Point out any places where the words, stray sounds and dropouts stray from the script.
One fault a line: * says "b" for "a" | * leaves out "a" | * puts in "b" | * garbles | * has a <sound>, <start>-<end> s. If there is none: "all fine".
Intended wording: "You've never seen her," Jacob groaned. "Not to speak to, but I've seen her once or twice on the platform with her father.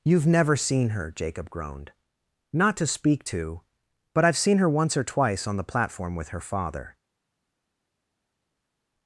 all fine